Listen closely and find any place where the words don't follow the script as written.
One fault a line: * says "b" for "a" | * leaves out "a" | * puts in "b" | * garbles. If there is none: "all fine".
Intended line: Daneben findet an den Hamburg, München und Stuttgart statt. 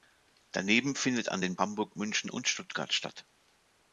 all fine